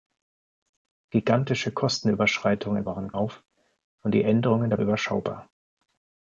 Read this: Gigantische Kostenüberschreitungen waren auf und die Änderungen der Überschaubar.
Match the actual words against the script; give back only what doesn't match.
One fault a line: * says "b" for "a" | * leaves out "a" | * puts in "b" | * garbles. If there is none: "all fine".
all fine